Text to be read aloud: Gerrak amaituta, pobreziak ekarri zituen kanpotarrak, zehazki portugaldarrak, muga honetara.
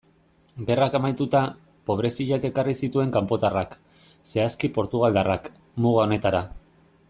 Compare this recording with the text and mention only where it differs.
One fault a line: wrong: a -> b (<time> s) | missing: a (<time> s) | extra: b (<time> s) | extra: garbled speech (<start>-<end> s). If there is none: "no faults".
no faults